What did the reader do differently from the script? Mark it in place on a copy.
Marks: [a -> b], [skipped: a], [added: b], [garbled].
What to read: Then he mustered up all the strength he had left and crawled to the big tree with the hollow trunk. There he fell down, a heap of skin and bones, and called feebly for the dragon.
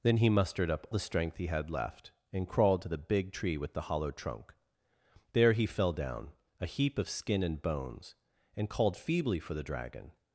Then he mustered up [skipped: all] the strength he had left and crawled to the big tree with the hollow trunk. There he fell down, a heap of skin and bones, and called feebly for the dragon.